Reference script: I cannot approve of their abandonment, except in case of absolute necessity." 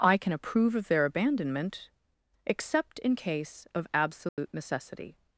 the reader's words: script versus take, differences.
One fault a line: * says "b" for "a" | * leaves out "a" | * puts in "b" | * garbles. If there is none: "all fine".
* says "can" for "cannot"